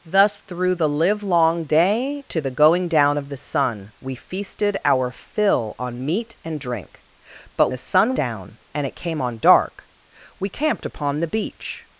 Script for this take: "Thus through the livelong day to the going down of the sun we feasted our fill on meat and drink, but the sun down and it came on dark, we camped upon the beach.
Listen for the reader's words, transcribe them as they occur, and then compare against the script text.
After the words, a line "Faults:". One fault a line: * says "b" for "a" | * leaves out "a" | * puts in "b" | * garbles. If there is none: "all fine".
"Thus through the livelong day to the going down of the sun we feasted our fill on meat and drink, but the sun down and it came on dark, we camped upon the beach.
Faults:
all fine